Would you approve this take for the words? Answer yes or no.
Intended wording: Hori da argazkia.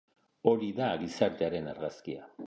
no